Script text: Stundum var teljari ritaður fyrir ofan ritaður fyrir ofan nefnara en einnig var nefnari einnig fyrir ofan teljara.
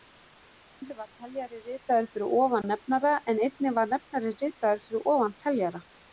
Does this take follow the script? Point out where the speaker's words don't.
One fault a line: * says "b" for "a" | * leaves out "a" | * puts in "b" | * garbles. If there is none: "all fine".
* leaves out "ritaður fyrir ofan"
* says "ritaður" for "einnig"